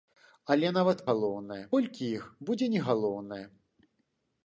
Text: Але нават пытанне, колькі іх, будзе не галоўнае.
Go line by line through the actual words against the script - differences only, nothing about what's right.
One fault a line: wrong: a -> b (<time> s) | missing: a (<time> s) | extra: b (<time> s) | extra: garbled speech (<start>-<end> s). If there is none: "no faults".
wrong: пытанне -> галоўнае (1.1 s)